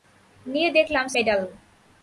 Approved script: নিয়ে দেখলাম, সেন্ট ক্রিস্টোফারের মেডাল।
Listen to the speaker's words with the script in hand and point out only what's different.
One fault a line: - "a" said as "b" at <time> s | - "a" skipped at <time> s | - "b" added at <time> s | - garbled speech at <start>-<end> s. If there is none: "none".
- "সেন্ট ক্রিস্টোফারের" skipped at 1.1 s